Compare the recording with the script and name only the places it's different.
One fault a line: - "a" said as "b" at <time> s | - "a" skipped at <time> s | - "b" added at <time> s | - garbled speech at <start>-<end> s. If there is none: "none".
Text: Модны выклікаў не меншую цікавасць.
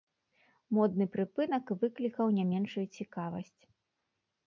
- "прыпынак" added at 1.2 s